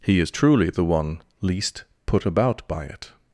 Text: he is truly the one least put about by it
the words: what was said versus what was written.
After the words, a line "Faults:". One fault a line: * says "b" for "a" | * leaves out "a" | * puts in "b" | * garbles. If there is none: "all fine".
he is truly the one least put about by it
Faults:
all fine